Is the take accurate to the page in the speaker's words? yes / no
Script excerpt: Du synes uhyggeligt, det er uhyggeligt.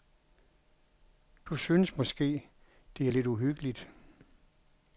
no